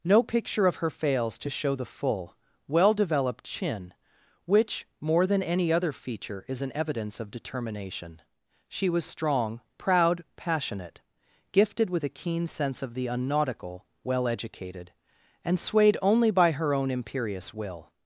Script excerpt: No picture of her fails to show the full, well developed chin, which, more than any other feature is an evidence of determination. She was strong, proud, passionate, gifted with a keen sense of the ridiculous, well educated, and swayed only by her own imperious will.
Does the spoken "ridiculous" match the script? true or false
false